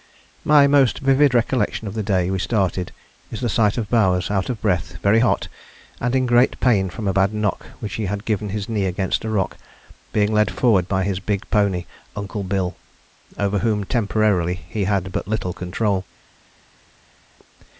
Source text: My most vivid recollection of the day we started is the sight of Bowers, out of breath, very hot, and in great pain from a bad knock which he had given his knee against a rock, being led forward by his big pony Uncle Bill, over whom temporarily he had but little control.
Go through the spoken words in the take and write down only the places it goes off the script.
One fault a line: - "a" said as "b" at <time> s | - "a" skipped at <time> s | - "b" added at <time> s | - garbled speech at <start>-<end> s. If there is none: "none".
none